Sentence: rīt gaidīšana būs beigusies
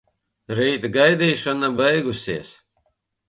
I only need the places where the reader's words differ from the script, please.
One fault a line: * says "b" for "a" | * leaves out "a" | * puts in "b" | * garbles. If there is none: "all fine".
* leaves out "būs"